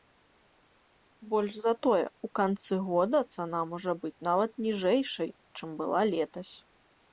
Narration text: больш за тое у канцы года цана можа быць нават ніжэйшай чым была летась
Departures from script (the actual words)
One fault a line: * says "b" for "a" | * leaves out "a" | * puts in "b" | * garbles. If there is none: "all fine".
all fine